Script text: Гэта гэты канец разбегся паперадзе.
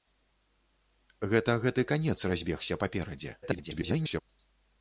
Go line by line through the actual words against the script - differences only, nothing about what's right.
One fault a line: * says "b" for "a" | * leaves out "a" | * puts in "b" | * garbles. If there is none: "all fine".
* garbles